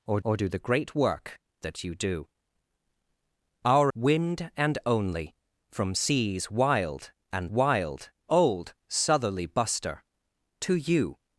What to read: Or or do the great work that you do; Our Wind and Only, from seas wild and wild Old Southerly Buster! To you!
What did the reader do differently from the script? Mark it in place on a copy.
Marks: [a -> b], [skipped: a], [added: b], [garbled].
Or or do the great work that you do; Our Wind and Only, from seas wild and wild Old Southerly Buster! To you!